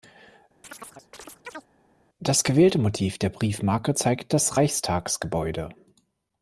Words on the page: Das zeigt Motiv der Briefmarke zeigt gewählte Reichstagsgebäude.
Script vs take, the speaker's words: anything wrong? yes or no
yes